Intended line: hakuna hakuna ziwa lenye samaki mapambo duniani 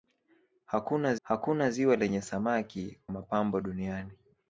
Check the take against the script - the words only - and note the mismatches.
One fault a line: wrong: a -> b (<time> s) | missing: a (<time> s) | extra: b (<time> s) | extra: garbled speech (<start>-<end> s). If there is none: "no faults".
no faults